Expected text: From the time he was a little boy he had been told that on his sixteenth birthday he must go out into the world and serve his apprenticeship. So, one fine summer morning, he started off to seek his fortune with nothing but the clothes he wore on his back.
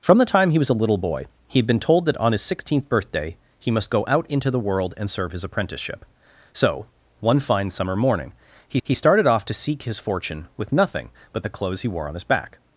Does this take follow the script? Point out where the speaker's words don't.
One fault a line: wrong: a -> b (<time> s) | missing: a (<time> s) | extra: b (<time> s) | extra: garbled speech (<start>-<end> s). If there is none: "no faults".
extra: he (8.8 s)